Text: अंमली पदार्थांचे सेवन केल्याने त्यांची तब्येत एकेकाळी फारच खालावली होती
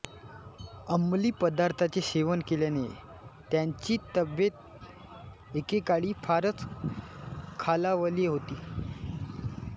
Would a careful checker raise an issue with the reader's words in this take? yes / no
no